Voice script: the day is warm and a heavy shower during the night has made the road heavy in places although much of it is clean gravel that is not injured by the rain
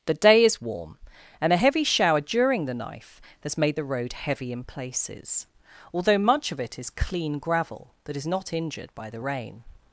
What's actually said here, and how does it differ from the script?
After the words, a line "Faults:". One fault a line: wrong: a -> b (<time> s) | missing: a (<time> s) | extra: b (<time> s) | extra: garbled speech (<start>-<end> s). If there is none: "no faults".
the day is warm and a heavy shower during the knife has made the road heavy in places although much of it is clean gravel that is not injured by the rain
Faults:
wrong: night -> knife (2.7 s)